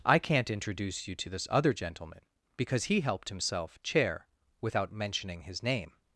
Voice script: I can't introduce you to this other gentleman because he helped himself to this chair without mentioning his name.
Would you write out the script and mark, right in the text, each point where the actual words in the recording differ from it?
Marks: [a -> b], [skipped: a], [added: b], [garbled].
I can't introduce you to this other gentleman because he helped himself [skipped: to this] chair without mentioning his name.